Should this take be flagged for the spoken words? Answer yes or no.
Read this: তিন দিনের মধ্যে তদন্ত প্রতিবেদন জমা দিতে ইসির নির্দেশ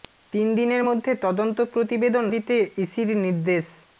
yes